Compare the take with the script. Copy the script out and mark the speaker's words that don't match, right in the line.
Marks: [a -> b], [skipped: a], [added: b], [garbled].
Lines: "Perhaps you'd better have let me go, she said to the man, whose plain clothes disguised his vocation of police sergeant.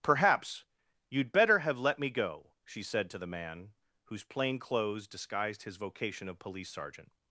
"Perhaps you'd better have let me go, she said to the man, whose plain clothes disguised his vocation of police sergeant.